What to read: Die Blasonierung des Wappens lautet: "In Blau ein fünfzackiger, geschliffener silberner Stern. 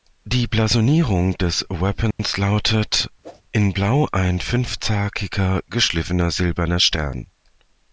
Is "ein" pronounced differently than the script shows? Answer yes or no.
no